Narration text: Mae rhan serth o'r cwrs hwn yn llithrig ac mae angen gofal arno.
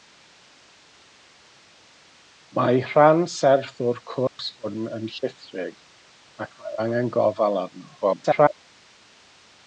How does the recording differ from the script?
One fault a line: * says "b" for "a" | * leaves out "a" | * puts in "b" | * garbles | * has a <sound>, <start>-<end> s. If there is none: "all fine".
* has a dropout, 4.3-4.4 s
* garbles